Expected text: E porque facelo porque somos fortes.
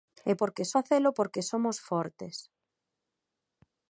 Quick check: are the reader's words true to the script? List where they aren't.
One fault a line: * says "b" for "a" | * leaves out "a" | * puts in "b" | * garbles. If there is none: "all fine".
all fine